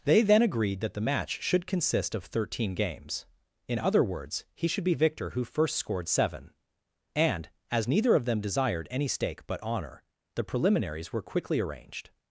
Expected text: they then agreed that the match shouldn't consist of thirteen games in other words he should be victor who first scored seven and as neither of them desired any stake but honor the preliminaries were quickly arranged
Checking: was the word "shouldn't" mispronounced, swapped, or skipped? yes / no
yes